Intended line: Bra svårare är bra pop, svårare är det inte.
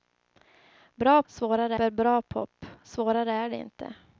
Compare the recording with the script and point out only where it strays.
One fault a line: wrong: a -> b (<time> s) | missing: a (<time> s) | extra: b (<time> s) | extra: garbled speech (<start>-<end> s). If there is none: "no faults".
no faults